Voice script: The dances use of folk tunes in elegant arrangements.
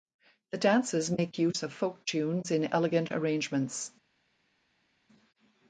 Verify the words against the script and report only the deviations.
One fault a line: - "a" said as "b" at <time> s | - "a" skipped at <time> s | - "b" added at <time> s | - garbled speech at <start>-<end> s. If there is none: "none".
- "make" added at 1.1 s